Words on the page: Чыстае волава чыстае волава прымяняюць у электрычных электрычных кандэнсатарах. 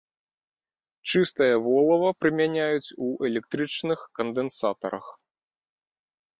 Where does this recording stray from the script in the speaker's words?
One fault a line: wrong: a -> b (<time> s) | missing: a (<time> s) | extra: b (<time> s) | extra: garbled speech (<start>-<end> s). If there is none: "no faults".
missing: чыстае волава (2.1 s)
missing: электрычных (4.0 s)